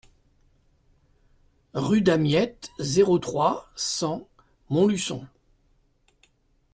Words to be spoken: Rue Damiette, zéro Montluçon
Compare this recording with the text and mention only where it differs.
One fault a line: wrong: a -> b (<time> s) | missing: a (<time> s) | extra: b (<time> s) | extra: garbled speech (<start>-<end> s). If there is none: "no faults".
extra: trois cent (3.2 s)